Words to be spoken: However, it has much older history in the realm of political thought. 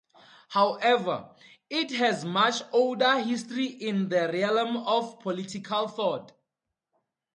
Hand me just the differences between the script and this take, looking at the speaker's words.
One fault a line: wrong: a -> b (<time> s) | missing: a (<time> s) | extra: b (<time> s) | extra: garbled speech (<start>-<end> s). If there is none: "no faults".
no faults